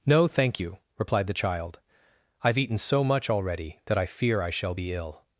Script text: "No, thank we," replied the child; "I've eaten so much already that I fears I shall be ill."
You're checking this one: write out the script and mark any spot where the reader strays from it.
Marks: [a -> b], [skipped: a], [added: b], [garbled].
"No, thank [we," -> you] replied the child; "I've eaten so much already that I [fears -> fear] I shall be ill."